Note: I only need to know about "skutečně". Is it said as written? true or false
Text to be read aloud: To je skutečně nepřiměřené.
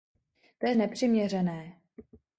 false